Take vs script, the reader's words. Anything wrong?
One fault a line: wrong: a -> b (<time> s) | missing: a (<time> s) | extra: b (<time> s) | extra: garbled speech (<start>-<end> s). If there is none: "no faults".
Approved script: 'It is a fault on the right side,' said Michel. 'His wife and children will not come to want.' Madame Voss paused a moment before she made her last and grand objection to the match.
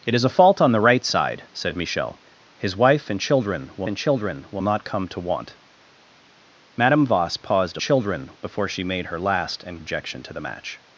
extra: and children will (3.9 s)
wrong: moment -> children (7.8 s)
missing: grand (9.8 s)